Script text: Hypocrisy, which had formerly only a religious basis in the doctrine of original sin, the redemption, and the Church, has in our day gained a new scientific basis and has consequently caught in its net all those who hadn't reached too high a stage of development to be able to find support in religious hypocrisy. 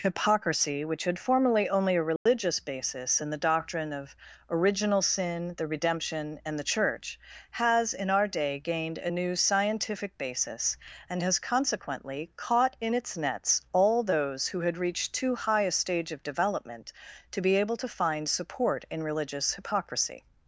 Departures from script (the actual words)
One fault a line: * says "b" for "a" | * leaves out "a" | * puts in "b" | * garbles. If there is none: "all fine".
* says "nets" for "net"
* says "had" for "hadn't"